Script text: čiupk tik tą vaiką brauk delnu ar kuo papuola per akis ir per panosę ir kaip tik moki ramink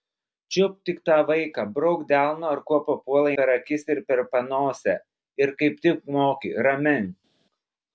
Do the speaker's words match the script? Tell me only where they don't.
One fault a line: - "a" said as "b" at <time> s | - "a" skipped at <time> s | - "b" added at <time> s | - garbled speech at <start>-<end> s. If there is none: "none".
none